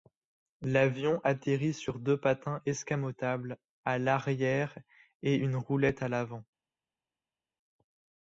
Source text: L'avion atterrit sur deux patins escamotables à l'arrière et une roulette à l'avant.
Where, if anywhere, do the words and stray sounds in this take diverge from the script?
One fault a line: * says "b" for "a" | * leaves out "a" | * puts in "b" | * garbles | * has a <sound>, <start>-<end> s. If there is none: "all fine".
all fine